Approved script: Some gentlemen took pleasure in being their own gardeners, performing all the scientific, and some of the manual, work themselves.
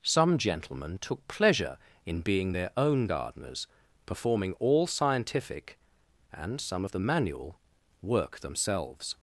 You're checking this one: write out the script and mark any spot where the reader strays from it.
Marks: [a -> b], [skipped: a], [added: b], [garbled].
Some gentlemen took pleasure in being their own gardeners, performing all [skipped: the] scientific, and some of the manual, work themselves.